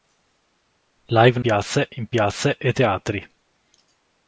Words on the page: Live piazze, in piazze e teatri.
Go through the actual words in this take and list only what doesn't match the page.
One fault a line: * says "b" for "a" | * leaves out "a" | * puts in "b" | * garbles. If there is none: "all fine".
all fine